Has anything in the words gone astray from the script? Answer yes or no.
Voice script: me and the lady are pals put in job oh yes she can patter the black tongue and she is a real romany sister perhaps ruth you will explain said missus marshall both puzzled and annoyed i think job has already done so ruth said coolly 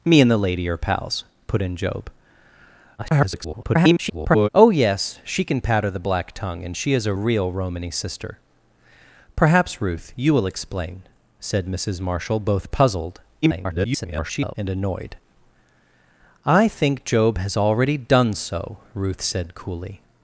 yes